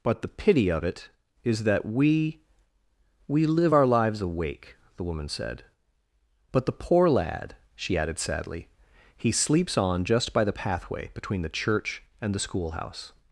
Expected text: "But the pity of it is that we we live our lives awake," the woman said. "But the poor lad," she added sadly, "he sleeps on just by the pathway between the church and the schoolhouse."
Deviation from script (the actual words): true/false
false